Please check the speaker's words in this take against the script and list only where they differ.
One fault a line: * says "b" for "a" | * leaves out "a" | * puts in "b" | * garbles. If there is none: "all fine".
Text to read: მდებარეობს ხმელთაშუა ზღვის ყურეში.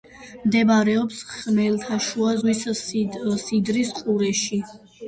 * puts in "სიდრის"